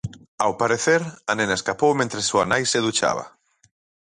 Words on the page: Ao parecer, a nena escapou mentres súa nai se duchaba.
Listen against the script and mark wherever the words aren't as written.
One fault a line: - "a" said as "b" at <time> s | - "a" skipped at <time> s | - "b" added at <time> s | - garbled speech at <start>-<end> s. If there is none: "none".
none